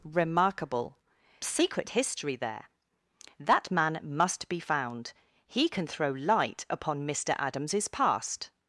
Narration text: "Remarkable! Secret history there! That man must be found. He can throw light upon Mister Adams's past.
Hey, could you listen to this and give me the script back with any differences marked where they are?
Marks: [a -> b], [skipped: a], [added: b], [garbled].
"Remarkable! Secret history there! That man must be found. He can throw light upon Mister Adams's past.